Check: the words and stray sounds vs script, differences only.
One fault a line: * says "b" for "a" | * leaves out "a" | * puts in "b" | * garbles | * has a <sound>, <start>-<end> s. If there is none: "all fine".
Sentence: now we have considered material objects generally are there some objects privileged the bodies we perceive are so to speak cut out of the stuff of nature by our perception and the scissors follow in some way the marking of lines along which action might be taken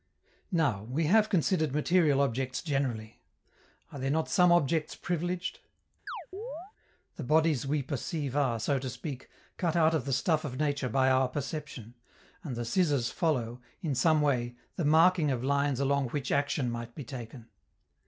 * puts in "not"
* has a chirp, 6.1-6.7 s